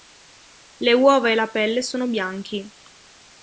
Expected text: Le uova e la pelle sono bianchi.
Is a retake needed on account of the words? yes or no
no